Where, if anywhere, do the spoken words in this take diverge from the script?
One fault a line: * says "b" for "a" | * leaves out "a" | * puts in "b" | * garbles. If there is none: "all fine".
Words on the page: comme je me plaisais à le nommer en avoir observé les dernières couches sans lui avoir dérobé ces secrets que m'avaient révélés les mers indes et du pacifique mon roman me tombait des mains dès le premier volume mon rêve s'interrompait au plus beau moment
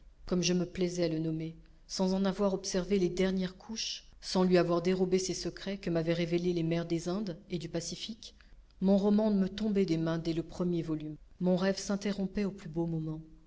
* puts in "sans"
* puts in "des"